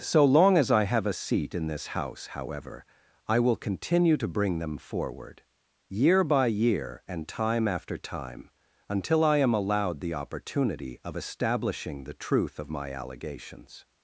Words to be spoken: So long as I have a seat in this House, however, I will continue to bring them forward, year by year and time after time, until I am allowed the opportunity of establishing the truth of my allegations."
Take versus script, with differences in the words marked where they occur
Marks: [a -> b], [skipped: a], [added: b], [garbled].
So long as I have a seat in this House, however, I will continue to bring them forward, year by year and time after time, until I am allowed the opportunity of establishing the truth of my allegations."